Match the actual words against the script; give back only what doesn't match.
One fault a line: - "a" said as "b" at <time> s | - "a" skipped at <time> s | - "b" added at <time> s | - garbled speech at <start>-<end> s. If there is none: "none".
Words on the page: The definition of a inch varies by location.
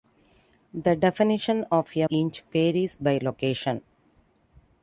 none